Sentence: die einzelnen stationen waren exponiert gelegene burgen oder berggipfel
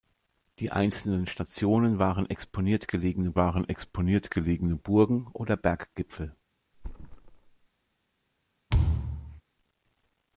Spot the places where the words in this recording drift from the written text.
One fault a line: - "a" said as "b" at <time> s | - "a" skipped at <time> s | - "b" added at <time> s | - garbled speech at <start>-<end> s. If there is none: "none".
- "waren exponiert gelegene" added at 3.4 s